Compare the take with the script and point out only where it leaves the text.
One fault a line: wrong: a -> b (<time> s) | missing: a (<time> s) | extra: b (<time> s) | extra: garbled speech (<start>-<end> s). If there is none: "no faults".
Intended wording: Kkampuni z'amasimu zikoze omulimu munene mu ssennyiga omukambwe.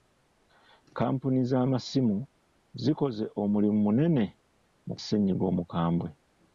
no faults